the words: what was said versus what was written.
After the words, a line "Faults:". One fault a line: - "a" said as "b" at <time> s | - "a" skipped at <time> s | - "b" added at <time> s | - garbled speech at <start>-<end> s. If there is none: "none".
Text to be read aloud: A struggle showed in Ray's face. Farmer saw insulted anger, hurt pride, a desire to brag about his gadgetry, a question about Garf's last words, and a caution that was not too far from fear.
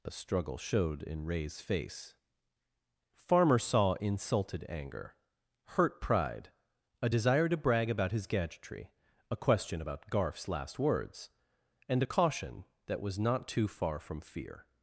A struggle showed in Ray's face. Farmer saw insulted anger, hurt pride, a desire to brag about his gadgetry, a question about Garf's last words, and a caution that was not too far from fear.
Faults:
none